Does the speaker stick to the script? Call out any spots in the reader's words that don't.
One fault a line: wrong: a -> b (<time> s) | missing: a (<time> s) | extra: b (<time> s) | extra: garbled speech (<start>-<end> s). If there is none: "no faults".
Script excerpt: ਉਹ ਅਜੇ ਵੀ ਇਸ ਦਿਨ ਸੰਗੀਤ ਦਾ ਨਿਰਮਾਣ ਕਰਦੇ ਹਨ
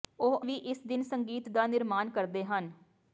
missing: ਅਜੇ (0.4 s)